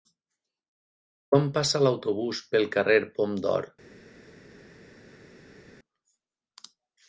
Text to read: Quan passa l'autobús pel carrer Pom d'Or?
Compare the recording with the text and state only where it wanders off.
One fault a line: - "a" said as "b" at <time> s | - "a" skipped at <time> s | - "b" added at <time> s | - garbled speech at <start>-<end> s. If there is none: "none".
none